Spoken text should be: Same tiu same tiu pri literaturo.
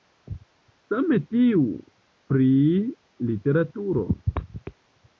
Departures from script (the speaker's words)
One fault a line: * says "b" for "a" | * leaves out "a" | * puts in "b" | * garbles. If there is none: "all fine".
* leaves out "same tiu"